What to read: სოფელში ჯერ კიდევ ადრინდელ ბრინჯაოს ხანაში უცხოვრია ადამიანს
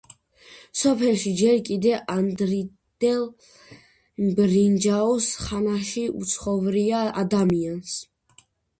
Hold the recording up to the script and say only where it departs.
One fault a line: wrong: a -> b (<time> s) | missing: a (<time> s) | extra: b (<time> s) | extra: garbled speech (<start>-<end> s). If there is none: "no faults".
no faults